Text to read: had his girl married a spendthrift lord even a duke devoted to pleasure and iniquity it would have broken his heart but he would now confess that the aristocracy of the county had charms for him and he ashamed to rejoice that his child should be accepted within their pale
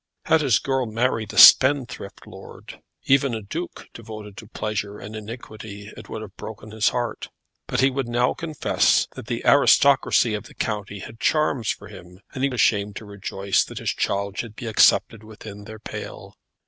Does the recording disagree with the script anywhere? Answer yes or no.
no